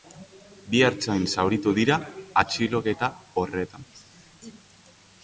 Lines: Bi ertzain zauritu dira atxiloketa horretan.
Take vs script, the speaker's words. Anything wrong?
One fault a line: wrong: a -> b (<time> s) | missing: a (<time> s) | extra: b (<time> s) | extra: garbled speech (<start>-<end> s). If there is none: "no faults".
no faults